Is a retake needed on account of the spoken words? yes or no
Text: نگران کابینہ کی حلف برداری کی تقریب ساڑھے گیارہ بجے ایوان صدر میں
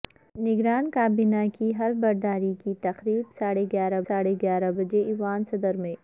yes